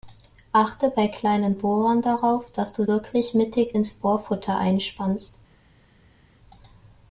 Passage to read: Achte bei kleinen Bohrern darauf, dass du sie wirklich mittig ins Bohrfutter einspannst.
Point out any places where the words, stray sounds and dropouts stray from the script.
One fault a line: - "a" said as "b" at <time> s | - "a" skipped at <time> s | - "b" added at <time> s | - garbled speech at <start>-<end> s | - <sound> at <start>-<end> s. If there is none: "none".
- "sie" skipped at 2.9 s